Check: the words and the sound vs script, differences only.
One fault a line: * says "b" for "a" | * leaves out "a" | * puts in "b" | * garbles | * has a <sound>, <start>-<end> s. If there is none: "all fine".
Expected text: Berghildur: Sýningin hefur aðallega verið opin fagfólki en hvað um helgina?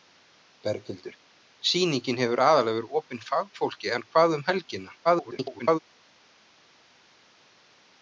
* garbles